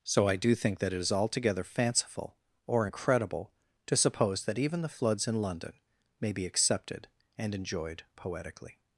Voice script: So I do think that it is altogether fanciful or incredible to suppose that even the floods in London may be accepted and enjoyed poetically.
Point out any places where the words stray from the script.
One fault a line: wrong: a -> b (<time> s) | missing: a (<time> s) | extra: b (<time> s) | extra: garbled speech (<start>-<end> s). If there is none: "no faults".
no faults